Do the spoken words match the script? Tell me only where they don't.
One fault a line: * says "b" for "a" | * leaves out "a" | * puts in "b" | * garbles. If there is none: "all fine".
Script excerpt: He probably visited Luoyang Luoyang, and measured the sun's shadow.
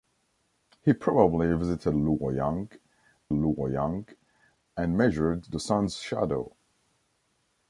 all fine